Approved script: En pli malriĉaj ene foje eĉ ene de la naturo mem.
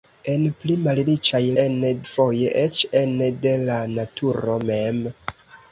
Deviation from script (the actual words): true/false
false